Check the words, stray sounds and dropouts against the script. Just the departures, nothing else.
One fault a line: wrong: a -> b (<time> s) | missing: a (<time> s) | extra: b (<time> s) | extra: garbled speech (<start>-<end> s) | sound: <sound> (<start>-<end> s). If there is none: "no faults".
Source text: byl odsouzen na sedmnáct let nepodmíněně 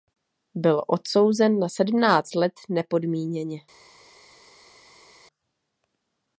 no faults